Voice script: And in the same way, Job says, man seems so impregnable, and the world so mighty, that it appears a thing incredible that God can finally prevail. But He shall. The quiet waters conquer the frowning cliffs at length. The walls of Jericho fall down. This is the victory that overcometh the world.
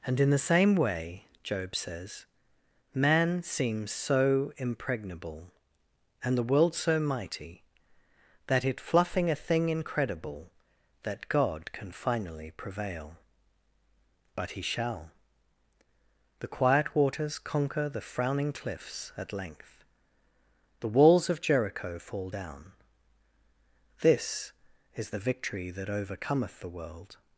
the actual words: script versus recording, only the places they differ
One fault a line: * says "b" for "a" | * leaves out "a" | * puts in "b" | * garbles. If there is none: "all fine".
* says "fluffing" for "appears"